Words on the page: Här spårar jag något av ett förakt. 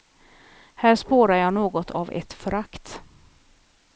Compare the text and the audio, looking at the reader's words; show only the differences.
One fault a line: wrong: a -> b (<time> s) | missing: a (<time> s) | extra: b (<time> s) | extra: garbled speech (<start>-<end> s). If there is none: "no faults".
no faults